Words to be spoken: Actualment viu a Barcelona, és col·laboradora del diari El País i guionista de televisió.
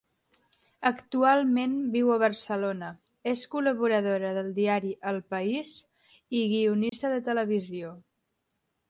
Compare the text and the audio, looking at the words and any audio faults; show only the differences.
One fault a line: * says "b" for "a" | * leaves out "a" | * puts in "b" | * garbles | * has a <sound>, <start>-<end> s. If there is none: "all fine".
* has a dropout, 6.9-6.9 s